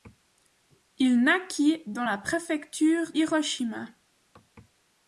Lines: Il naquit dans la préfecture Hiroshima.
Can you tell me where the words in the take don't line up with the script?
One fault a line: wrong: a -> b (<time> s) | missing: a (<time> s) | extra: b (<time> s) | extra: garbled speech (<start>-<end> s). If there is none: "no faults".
no faults